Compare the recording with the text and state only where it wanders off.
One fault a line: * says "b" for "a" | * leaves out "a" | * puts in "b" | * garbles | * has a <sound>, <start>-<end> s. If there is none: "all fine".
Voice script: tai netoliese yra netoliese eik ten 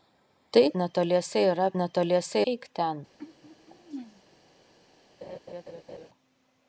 * has a throat clearing, 3.2-4.2 s
* has a laugh, 5.2-6.1 s